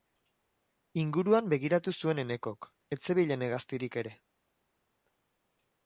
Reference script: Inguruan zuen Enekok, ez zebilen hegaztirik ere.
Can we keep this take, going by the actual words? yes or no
no